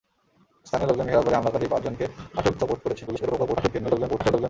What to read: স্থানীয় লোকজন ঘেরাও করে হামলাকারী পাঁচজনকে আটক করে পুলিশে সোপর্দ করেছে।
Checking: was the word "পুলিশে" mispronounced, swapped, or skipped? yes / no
yes